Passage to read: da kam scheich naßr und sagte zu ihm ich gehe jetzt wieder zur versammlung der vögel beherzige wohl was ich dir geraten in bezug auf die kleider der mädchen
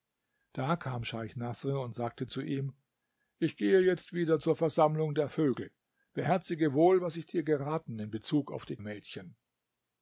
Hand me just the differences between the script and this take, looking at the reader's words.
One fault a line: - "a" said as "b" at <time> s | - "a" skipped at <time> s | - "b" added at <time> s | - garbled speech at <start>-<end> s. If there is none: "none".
- "kleider der" skipped at 8.8 s